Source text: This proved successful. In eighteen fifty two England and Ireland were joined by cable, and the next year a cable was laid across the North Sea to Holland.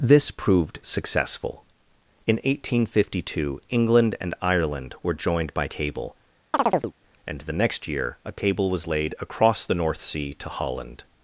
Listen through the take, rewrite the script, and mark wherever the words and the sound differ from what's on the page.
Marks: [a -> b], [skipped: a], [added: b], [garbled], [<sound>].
This proved successful. In eighteen fifty two England and Ireland were joined by cable, [chirp] and the next year a cable was laid across the North Sea to Holland.